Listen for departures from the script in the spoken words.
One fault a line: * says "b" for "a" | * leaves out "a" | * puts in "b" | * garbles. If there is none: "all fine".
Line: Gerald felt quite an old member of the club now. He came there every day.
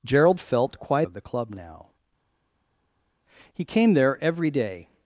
* leaves out "an old member"